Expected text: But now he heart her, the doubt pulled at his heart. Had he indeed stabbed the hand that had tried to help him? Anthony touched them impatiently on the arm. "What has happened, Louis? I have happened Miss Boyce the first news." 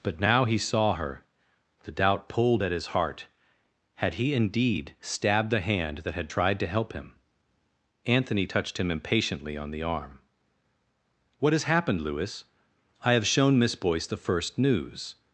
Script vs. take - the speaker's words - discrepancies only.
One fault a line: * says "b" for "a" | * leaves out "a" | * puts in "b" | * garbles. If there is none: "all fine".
* says "saw" for "heart"
* says "him" for "them"
* says "shown" for "happened"